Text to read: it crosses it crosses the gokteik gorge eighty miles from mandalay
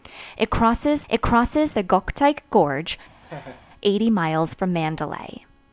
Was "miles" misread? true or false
false